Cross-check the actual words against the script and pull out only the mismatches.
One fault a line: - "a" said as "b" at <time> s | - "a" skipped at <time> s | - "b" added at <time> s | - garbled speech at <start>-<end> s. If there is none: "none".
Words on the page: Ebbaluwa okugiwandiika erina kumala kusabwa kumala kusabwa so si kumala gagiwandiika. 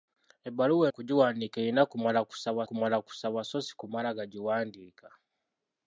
none